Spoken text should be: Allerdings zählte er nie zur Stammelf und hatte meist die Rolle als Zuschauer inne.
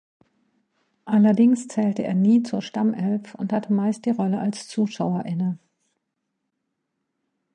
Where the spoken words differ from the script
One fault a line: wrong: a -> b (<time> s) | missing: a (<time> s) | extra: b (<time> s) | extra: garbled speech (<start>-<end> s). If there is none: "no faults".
no faults